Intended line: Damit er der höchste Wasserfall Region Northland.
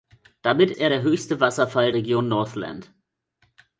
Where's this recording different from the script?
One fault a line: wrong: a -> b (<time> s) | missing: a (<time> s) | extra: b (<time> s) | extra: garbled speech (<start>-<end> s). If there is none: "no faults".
no faults